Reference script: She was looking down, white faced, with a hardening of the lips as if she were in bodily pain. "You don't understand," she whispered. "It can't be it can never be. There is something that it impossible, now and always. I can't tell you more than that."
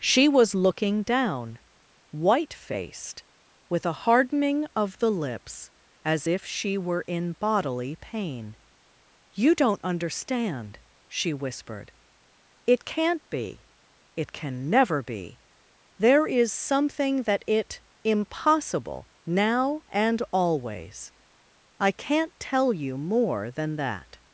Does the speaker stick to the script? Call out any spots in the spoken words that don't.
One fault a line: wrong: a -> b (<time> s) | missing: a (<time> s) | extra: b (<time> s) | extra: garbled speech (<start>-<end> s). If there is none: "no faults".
no faults